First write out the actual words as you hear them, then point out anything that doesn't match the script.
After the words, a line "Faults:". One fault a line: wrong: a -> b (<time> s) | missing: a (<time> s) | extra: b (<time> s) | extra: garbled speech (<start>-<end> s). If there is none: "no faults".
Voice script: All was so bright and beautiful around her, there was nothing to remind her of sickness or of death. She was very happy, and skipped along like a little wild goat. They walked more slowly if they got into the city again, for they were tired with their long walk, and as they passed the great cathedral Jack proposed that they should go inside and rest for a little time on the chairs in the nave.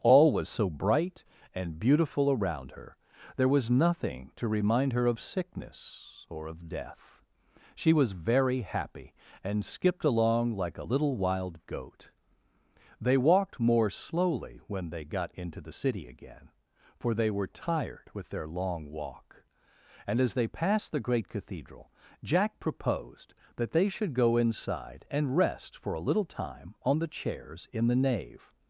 All was so bright and beautiful around her, there was nothing to remind her of sickness or of death. She was very happy, and skipped along like a little wild goat. They walked more slowly when they got into the city again, for they were tired with their long walk, and as they passed the great cathedral Jack proposed that they should go inside and rest for a little time on the chairs in the nave.
Faults:
wrong: if -> when (14.7 s)